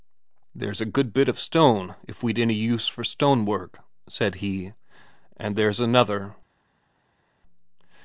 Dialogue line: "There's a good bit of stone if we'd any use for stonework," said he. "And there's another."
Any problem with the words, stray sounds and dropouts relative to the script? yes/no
no